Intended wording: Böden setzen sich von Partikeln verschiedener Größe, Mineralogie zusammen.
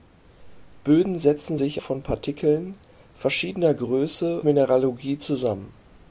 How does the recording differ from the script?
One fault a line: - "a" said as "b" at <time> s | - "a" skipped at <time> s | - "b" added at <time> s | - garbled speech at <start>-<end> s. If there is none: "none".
none